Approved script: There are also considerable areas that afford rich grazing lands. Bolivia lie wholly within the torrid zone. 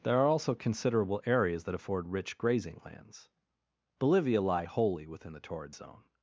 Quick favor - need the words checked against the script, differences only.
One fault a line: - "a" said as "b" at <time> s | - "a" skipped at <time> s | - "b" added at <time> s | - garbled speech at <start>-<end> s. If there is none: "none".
none